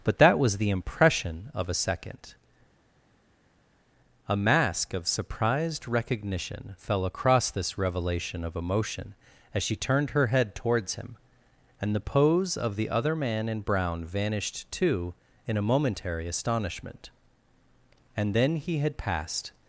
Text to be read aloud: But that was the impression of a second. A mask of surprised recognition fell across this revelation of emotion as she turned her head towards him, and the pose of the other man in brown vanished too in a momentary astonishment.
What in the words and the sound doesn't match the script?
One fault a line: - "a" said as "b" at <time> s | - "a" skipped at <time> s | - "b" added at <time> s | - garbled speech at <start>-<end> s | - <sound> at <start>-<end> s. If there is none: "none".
- "And then he had passed" added at 18.2 s